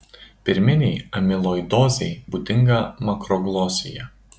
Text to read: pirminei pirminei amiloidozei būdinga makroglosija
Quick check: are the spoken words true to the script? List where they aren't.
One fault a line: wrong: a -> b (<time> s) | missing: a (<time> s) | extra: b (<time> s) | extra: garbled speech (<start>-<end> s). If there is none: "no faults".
missing: pirminei (0.9 s)